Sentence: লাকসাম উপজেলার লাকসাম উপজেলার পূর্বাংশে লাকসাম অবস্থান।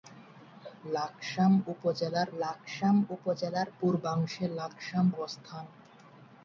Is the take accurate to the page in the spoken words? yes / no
yes